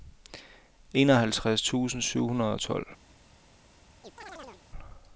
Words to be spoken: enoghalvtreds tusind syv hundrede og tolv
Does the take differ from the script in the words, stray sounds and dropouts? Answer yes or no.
yes